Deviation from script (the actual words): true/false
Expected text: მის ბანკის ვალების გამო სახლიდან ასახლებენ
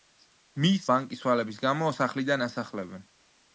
false